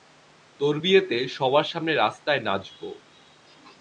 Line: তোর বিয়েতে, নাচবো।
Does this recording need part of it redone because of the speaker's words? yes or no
yes